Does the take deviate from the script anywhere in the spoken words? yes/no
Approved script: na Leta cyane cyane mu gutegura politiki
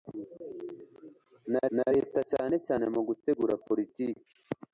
yes